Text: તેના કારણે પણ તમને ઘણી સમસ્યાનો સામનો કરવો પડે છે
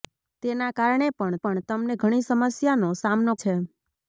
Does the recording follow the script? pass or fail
fail